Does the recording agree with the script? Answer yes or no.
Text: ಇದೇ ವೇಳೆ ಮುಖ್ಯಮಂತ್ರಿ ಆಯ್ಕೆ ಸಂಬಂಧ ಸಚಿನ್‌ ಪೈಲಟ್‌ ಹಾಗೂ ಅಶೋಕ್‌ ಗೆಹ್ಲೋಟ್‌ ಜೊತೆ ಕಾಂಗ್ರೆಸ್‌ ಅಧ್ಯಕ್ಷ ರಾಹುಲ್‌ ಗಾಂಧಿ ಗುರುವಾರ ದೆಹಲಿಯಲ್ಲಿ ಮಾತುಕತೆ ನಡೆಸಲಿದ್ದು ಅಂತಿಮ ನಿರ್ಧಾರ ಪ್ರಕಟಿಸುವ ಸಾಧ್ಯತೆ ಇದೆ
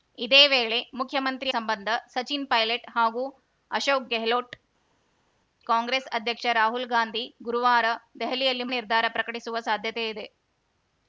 no